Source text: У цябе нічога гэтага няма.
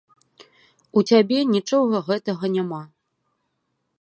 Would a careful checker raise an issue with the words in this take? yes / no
no